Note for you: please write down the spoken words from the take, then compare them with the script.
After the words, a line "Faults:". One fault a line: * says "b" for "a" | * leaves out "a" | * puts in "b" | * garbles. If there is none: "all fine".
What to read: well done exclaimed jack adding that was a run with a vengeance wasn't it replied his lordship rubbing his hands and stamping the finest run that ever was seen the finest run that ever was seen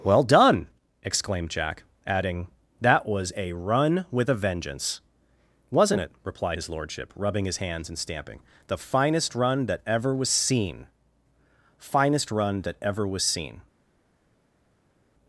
well done exclaimed jack adding that was a run with a vengeance wasn't it replied his lordship rubbing his hands and stamping the finest run that ever was seen finest run that ever was seen
Faults:
* leaves out "the"